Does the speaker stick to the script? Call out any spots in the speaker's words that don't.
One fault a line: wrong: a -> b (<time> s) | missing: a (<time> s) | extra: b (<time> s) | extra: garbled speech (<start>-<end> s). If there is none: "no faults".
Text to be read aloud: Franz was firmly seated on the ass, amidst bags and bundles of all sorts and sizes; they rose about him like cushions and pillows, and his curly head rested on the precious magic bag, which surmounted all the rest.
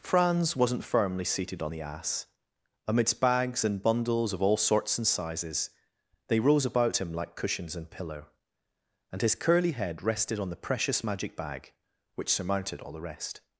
wrong: was -> wasn't (0.6 s)
wrong: pillows -> pillow (7.9 s)